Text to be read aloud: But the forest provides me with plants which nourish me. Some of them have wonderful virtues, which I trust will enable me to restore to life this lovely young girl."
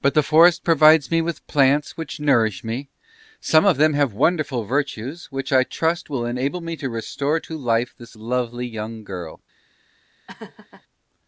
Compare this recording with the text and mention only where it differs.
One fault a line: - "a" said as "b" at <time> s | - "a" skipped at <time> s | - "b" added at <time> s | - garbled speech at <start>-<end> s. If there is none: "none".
none